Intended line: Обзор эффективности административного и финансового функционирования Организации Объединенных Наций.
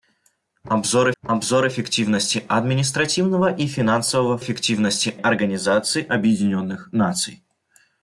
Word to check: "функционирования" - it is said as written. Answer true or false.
false